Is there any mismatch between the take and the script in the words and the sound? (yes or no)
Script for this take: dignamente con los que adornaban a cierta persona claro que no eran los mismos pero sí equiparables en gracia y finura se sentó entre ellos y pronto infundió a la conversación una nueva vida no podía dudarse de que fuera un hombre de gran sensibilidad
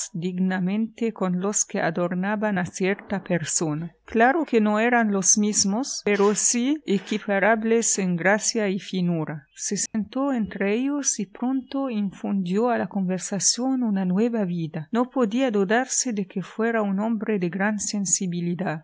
yes